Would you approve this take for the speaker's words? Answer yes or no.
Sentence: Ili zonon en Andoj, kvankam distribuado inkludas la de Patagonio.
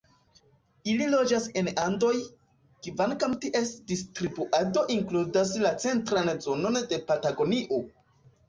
no